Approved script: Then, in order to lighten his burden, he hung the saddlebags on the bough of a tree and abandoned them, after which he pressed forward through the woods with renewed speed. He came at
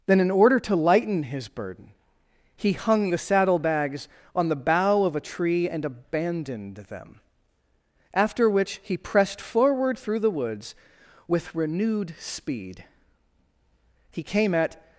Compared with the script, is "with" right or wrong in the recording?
right